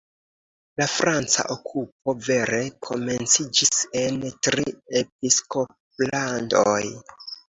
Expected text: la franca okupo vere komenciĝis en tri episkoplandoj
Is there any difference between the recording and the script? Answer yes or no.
no